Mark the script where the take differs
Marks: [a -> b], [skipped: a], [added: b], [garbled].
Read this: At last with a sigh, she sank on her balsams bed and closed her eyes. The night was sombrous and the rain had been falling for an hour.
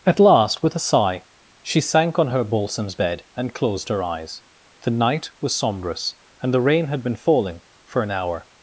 At last with a sigh, she sank on her balsams bed and closed her eyes. The night was sombrous and the rain had been falling for an hour.